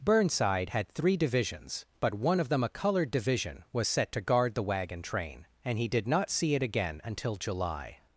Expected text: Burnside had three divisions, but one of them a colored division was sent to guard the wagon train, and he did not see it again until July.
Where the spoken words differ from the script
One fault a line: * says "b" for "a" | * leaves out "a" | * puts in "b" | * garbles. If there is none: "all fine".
* says "set" for "sent"